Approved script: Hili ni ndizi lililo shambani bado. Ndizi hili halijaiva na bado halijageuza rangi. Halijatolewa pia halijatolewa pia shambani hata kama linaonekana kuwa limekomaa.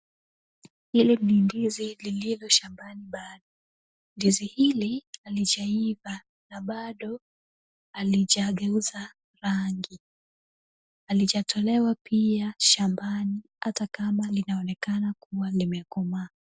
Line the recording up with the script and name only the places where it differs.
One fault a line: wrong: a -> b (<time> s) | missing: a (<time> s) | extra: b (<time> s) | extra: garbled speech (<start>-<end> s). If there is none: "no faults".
missing: halijatolewa pia (12.5 s)